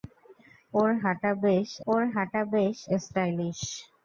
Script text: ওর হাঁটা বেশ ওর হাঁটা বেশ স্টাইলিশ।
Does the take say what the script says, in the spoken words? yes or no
yes